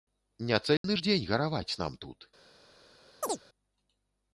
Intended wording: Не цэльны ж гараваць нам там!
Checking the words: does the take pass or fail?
fail